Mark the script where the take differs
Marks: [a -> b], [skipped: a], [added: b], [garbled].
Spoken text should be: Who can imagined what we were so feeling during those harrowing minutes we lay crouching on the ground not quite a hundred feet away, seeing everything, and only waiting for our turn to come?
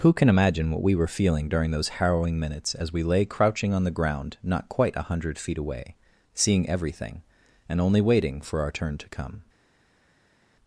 Who can [imagined -> imagine] what we were [skipped: so] feeling during those harrowing minutes [added: as] we lay crouching on the ground not quite a hundred feet away, seeing everything, and only waiting for our turn to come?